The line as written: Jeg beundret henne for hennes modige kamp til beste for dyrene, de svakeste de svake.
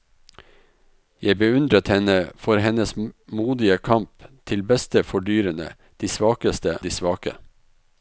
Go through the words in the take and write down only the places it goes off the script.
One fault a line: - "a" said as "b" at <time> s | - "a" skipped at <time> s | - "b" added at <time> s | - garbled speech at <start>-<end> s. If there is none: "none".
none